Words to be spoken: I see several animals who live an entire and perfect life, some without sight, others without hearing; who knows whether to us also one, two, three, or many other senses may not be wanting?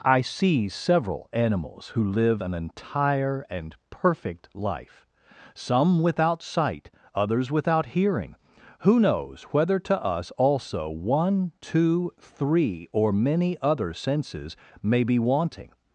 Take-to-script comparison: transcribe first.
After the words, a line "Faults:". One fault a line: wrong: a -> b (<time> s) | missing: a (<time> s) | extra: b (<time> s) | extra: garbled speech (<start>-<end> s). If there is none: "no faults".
I see several animals who live an entire and perfect life, some without sight, others without hearing; who knows whether to us also one, two, three, or many other senses may be wanting?
Faults:
missing: not (15.0 s)